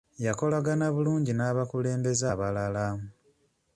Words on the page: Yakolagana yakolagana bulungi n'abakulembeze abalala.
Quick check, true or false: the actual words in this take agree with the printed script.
false